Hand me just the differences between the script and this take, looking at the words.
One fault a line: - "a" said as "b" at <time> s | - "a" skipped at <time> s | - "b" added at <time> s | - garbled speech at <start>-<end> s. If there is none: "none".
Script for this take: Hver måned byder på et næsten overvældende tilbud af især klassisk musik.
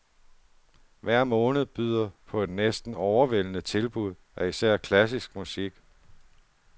none